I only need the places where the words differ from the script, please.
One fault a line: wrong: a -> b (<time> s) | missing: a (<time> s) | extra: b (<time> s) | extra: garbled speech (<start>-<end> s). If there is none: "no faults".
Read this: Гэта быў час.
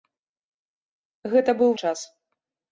no faults